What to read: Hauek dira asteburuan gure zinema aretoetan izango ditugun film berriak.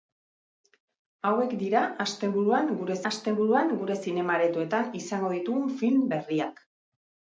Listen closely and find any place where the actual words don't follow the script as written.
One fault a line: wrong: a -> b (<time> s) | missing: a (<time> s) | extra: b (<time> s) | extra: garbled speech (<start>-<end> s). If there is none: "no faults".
extra: asteburuan gure (3.1 s)